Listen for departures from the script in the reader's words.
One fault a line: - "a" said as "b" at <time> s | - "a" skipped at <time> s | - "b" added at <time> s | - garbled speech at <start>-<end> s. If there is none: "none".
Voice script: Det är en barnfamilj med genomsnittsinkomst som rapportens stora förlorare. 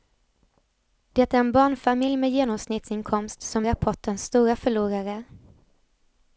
none